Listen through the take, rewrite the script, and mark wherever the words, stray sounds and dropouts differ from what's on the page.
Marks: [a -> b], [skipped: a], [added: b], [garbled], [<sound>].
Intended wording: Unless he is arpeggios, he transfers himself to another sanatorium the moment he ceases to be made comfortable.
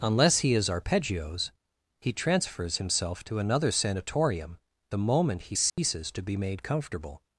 Unless he is arpeggios, he transfers himself to another sanatorium the moment he ceases [dropout] to be made comfortable.